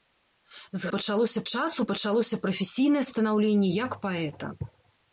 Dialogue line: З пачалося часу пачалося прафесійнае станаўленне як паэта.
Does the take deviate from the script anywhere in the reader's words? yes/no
no